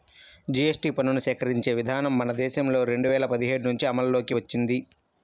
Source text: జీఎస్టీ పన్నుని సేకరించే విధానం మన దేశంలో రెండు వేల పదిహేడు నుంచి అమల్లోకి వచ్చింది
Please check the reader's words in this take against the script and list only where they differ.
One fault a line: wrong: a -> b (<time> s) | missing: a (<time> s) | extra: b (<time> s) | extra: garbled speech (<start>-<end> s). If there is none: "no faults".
no faults